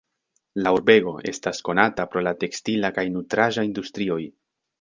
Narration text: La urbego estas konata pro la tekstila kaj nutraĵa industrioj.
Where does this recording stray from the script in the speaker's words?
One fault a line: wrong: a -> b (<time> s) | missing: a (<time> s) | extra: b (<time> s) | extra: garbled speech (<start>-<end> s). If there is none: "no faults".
no faults